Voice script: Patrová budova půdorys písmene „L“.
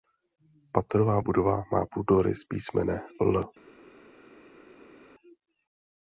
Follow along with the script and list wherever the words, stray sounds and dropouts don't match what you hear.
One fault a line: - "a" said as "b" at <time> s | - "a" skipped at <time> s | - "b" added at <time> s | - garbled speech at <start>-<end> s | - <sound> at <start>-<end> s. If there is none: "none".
- "má" added at 1.7 s